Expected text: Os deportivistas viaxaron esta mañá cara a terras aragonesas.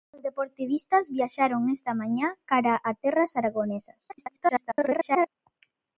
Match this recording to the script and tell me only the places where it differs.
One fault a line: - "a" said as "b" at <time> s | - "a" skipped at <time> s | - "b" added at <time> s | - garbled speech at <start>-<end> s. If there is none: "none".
- garbled speech at 4.1-5.3 s